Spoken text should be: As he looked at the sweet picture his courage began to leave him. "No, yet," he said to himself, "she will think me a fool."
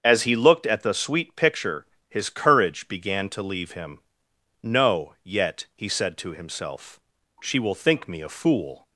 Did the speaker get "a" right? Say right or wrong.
right